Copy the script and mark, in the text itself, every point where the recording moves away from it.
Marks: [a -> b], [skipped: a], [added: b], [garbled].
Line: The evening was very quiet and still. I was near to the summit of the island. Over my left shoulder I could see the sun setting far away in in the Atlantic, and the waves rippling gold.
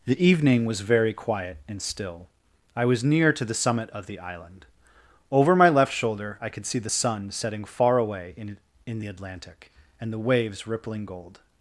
The evening was very quiet and still. I was near to the summit of the island. Over my left shoulder I could see the sun setting far away in in the Atlantic, and the waves rippling gold.